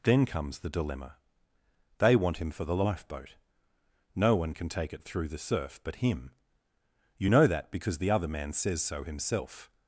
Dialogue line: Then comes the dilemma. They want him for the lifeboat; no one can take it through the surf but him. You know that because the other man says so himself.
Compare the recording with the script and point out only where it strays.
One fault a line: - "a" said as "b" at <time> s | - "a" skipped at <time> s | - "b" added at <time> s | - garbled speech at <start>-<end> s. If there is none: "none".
none